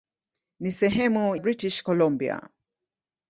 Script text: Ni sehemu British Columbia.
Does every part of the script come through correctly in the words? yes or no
yes